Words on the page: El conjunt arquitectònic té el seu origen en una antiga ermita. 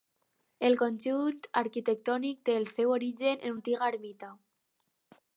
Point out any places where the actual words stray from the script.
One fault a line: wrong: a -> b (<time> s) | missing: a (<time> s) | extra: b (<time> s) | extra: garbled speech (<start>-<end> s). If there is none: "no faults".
missing: una (3.6 s)